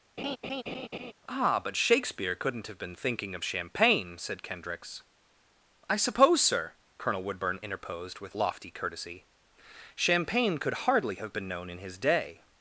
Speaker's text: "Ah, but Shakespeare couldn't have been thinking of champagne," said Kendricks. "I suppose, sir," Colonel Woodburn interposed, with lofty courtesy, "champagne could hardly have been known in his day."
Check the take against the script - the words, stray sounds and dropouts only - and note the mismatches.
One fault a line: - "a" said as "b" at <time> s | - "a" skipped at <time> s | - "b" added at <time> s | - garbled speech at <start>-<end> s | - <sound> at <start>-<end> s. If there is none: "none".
- laugh at 0.2-1.1 s